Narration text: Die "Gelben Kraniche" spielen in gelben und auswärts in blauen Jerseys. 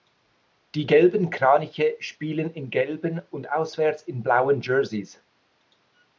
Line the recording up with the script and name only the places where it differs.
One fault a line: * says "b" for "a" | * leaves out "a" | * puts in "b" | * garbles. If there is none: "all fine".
all fine